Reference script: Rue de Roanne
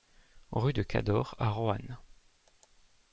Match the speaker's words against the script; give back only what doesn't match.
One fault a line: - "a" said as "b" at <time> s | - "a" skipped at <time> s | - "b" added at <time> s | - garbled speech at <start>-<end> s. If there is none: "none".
- "Cadore à" added at 0.8 s